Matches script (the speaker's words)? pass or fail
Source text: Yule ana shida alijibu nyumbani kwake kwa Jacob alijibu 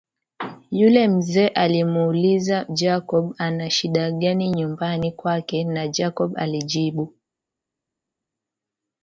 fail